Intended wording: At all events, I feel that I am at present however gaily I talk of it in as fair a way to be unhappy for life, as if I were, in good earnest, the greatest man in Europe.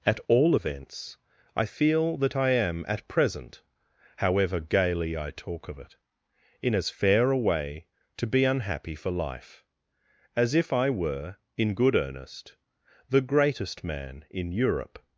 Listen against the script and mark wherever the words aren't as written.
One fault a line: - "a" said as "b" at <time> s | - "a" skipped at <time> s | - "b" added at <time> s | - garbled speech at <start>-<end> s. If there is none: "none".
none